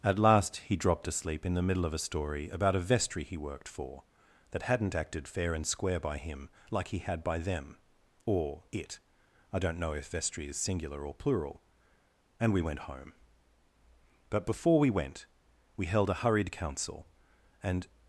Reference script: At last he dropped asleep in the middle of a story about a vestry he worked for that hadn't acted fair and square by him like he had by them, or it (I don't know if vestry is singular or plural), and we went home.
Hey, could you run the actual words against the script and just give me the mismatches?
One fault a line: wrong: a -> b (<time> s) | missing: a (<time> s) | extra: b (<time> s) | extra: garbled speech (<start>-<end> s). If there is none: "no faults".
extra: But before we went we held a hurried council and (14.3 s)